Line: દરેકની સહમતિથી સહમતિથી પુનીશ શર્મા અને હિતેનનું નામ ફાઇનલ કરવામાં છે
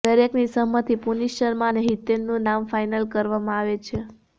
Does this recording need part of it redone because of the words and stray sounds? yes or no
yes